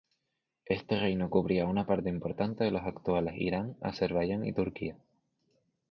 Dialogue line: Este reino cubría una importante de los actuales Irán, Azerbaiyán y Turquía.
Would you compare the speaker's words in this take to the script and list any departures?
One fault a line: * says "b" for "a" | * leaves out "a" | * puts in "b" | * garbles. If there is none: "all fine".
* puts in "parte"